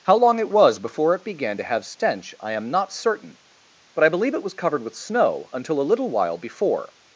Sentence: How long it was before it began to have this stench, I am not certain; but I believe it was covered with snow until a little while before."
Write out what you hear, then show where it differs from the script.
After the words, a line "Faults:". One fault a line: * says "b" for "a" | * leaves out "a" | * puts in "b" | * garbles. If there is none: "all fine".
How long it was before it began to have stench, I am not certain; but I believe it was covered with snow until a little while before."
Faults:
* leaves out "this"